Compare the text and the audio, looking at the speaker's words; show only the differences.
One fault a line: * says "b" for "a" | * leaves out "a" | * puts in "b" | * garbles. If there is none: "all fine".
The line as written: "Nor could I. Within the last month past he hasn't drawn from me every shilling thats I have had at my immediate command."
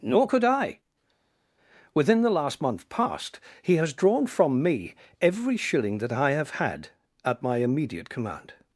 * says "has" for "hasn't"
* says "that" for "thats"